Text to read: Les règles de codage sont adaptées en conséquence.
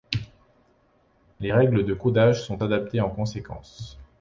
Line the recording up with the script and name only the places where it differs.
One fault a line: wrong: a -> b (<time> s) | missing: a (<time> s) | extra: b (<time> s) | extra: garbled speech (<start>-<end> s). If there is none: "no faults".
no faults